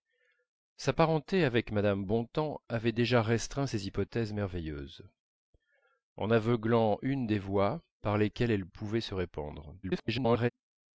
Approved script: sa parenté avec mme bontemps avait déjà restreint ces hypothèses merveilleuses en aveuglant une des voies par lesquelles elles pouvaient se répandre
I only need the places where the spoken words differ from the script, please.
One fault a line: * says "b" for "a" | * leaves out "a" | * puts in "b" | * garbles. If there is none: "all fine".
* garbles